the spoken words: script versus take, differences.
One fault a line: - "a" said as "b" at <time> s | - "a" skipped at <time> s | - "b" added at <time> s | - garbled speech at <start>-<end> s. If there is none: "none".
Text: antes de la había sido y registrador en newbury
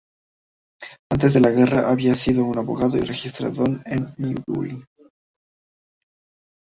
- "guerra" added at 1.5 s
- "un abogado" added at 2.4 s